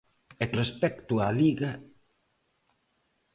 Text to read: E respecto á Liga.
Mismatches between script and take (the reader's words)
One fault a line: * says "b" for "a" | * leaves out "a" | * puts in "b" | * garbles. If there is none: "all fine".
all fine